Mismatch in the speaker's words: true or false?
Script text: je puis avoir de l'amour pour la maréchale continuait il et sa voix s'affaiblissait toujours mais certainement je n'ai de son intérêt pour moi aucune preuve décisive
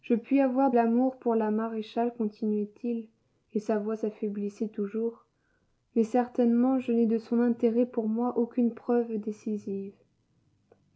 true